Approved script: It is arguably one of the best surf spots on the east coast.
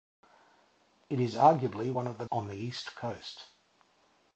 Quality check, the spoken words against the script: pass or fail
fail